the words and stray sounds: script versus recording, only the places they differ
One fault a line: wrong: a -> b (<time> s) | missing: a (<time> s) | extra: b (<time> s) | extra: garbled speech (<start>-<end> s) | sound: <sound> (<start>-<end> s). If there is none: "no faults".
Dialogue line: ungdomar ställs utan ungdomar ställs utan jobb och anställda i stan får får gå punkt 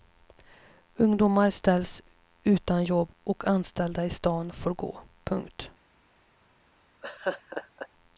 missing: ungdomar ställs utan (2.8 s)
missing: får (4.7 s)
sound: laugh (7.0-7.9 s)